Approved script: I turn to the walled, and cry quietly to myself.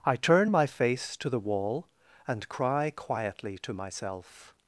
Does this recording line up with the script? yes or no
no